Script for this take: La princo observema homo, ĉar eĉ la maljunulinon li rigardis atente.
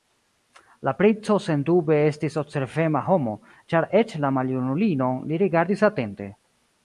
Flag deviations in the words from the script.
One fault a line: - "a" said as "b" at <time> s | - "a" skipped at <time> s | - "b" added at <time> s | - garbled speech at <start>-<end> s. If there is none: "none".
- "sendube estis" added at 1.5 s